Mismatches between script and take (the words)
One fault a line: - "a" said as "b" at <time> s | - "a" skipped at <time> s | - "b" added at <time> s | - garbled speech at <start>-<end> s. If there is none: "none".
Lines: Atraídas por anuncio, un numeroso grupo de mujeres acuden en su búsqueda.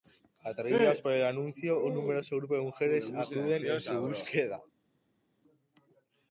- "el" added at 1.1 s